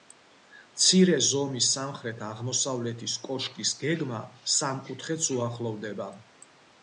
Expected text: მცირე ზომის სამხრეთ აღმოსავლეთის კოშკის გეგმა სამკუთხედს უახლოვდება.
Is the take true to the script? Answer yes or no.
yes